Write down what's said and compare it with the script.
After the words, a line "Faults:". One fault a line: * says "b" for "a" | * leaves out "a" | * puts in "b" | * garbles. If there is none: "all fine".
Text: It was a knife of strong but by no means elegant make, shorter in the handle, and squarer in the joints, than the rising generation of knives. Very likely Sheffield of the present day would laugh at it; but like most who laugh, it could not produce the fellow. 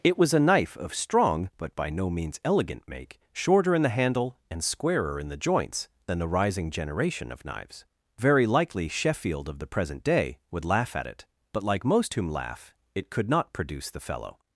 It was a knife of strong but by no means elegant make, shorter in the handle, and squarer in the joints, than the rising generation of knives. Very likely Sheffield of the present day would laugh at it; but like most whom laugh, it could not produce the fellow.
Faults:
* says "whom" for "who"